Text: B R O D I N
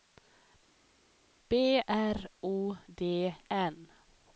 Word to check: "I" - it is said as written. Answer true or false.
false